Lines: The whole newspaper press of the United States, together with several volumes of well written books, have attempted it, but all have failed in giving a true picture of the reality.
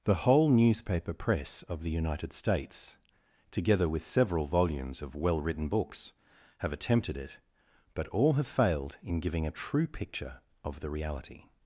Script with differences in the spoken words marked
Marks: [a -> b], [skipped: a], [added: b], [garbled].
The whole newspaper press of the United States, together with several volumes of well written books, have attempted it, but all have failed in giving a true picture of the reality.